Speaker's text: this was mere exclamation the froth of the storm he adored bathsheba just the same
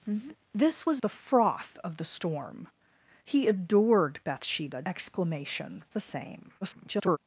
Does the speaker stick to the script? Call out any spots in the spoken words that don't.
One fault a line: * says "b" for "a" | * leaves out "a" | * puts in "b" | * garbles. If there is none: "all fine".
* leaves out "mere exclamation"
* says "exclamation" for "just"
* garbles